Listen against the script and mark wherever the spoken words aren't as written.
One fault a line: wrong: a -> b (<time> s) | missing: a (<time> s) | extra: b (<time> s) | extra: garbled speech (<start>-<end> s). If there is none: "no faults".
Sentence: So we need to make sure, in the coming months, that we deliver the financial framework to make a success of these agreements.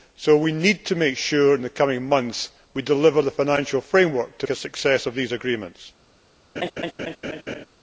missing: make (4.5 s)